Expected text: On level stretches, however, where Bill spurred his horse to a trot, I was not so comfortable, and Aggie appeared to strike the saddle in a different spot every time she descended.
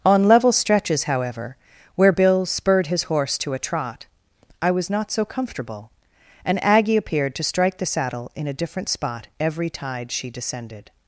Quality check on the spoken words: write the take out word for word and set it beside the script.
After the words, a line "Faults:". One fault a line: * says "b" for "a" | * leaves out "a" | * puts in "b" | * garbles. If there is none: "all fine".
On level stretches, however, where Bill spurred his horse to a trot, I was not so comfortable, and Aggie appeared to strike the saddle in a different spot every tide she descended.
Faults:
* says "tide" for "time"